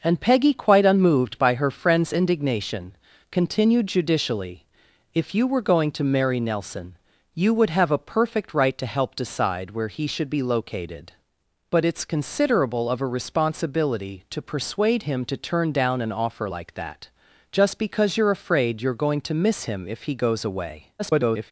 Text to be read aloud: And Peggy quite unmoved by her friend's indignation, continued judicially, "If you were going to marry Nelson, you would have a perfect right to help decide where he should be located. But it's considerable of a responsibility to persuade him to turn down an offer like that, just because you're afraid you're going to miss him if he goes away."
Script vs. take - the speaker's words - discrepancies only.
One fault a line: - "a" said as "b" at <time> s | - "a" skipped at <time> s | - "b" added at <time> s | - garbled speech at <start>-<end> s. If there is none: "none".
- garbled speech at 21.0-21.5 s